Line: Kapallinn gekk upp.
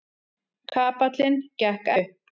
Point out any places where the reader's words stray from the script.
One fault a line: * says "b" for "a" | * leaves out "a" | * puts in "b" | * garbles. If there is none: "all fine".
all fine